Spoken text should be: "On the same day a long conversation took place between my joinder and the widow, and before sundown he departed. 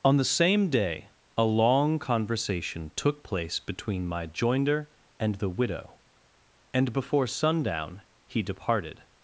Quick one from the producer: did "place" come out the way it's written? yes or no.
yes